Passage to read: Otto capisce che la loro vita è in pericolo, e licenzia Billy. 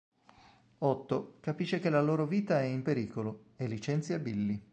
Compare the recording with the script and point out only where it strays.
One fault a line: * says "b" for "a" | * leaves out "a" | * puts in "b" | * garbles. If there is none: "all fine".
all fine